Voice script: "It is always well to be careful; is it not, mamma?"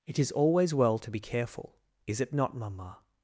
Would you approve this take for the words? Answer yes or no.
yes